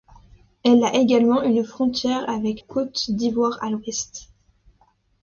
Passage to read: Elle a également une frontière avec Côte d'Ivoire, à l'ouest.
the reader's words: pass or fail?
pass